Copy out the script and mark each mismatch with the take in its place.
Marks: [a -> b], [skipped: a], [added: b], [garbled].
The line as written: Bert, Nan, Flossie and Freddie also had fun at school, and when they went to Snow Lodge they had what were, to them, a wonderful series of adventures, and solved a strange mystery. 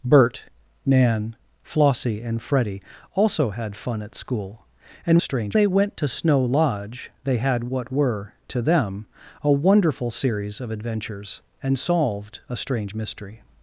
Bert, Nan, Flossie and Freddie also had fun at school, and [when -> strange] they went to Snow Lodge they had what were, to them, a wonderful series of adventures, and solved a strange mystery.